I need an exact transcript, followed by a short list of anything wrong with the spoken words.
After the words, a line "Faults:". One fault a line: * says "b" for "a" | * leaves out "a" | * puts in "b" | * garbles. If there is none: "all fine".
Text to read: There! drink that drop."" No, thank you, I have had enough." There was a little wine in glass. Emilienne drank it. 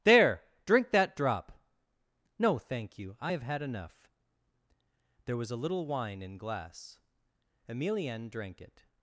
There! drink that drop."" No, thank you, I have had enough." There was a little wine in glass. Emilienne drank it.
Faults:
all fine